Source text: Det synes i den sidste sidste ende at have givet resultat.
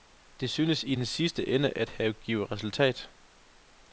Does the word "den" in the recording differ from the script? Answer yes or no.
no